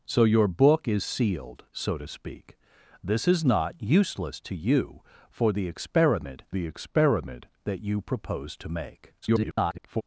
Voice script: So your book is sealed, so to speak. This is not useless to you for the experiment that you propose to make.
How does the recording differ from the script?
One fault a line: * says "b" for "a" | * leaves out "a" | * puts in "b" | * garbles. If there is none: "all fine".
* puts in "the experiment"
* garbles